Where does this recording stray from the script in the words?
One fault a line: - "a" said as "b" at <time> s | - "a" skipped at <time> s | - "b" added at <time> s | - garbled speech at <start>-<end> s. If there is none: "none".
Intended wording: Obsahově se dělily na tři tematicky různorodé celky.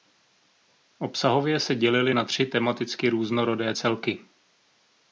none